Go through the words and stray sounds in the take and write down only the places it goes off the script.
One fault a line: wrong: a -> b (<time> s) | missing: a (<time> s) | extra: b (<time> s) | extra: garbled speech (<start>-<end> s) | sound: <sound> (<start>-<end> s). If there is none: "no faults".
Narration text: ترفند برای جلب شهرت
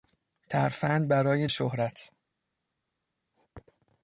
missing: جلب (1.5 s)